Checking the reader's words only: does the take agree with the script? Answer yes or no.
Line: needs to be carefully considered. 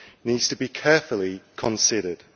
yes